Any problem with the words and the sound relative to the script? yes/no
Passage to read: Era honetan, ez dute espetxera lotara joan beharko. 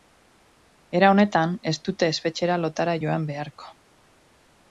no